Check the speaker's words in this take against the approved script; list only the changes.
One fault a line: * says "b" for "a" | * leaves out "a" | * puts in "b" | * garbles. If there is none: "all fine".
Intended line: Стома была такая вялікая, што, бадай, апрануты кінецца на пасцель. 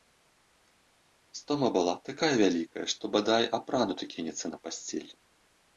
all fine